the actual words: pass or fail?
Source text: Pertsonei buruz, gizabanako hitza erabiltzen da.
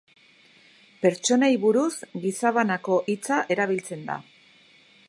pass